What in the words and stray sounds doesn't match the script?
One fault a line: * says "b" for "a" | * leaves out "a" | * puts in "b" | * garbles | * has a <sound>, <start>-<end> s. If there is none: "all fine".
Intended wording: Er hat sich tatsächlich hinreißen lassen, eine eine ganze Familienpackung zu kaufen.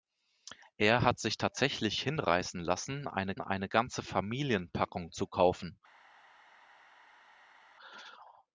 all fine